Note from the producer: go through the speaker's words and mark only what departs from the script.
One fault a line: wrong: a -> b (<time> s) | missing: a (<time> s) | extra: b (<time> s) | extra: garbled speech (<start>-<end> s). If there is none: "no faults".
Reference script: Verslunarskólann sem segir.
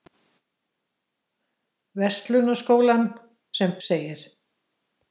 no faults